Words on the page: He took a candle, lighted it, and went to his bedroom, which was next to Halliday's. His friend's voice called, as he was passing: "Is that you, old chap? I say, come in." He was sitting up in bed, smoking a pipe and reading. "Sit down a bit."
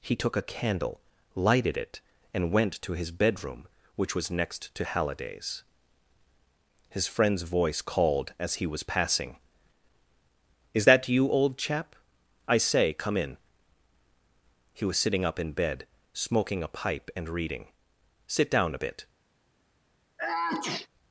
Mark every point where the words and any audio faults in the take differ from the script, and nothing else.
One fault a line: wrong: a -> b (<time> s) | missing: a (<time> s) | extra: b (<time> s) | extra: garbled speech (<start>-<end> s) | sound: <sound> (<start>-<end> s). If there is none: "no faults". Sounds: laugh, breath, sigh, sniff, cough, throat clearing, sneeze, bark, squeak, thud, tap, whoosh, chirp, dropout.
sound: sneeze (20.2-20.9 s)